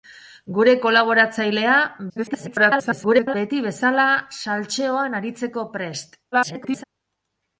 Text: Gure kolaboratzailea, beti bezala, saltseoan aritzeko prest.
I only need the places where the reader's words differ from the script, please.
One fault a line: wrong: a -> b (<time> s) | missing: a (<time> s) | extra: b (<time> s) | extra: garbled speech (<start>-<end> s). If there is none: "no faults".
extra: garbled speech (2.1-3.4 s)
extra: garbled speech (6.3-6.8 s)